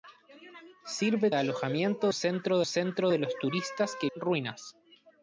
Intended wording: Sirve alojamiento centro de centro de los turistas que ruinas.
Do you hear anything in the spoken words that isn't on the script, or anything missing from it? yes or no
no